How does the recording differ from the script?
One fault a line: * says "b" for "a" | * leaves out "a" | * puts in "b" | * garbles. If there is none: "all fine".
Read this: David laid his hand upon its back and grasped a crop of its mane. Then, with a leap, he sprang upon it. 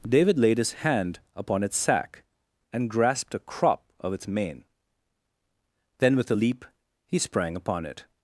* says "sack" for "back"